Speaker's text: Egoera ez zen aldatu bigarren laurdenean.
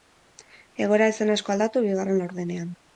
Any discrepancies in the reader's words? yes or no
yes